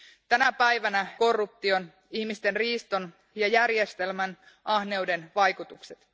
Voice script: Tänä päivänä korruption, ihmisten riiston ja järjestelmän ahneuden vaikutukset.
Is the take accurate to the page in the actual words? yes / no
yes